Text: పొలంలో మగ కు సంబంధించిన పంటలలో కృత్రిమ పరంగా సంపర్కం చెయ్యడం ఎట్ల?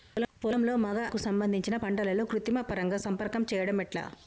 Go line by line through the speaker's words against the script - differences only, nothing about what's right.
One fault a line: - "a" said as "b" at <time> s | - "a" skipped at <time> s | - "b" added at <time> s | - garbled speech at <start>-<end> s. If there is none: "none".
none